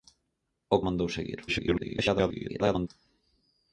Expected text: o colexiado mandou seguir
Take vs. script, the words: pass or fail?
fail